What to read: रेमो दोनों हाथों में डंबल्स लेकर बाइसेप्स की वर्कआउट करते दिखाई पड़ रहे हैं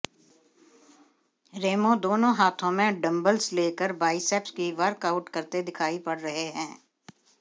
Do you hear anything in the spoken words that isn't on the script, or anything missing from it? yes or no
no